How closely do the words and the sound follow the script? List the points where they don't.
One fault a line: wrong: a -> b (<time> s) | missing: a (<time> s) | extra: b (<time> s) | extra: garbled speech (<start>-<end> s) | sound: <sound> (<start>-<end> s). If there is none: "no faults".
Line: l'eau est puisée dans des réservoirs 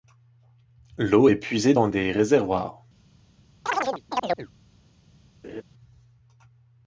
sound: chirp (3.7-4.5 s)
sound: laugh (5.4-5.6 s)